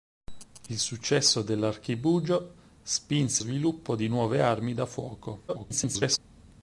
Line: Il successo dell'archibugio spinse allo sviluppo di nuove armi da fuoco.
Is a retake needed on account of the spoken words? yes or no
yes